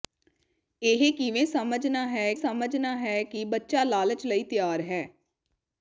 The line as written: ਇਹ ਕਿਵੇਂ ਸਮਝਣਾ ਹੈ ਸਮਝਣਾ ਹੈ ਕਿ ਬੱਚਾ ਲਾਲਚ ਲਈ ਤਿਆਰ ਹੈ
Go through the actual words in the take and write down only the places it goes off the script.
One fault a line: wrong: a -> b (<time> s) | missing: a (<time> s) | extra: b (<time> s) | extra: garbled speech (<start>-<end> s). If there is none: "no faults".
no faults